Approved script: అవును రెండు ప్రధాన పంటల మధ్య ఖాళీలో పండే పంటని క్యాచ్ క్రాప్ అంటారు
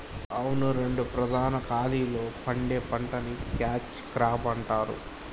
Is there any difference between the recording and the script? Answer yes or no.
yes